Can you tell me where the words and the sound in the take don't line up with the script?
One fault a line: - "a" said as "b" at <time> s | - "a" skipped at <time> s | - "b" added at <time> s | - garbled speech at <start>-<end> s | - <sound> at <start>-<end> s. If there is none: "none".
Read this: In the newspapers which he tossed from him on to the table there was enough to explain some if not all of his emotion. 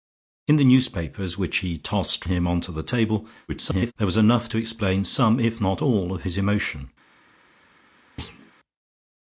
- "from" skipped at 2.2 s
- garbled speech at 3.5-3.9 s
- thud at 8.2-8.5 s